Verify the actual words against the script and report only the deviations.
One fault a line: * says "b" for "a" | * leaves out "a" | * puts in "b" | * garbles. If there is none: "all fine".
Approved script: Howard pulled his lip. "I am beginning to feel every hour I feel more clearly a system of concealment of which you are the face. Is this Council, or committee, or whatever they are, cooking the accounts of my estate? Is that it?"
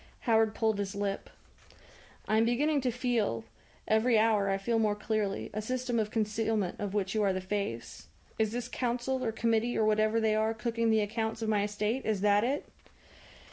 all fine